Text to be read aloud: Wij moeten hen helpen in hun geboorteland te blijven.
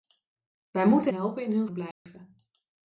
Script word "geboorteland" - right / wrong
wrong